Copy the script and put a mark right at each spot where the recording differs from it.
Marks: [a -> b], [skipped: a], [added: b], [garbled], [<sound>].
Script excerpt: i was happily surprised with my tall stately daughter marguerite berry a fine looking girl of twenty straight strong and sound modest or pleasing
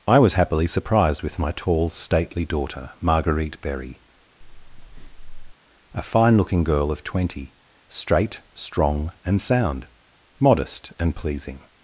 i was happily surprised with my tall stately daughter marguerite berry [breath] a fine looking girl of twenty straight strong and sound modest [or -> and] pleasing